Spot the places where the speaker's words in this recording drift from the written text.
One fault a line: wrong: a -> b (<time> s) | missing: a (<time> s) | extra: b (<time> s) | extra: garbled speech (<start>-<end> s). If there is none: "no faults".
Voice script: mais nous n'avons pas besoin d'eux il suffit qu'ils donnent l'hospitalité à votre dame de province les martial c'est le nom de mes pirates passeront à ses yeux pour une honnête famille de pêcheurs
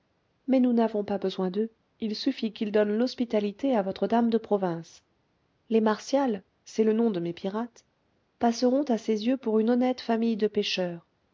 no faults